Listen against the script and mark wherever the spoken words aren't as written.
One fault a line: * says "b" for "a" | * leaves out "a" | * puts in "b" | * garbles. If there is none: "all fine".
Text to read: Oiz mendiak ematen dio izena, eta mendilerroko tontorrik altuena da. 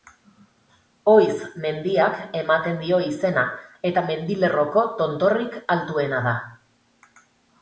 all fine